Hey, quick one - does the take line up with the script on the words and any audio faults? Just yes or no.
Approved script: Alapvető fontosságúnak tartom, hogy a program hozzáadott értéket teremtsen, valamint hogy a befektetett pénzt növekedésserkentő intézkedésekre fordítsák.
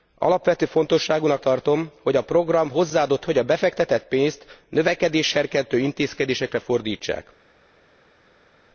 no